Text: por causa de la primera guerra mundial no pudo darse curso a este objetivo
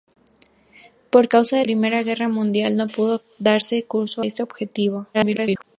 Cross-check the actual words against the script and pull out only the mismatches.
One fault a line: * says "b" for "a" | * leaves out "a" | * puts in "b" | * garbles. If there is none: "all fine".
* leaves out "la"
* leaves out "a"
* garbles